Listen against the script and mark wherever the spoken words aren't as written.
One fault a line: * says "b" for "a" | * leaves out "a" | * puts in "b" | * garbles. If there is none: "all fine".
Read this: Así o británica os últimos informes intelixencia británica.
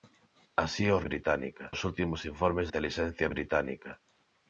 all fine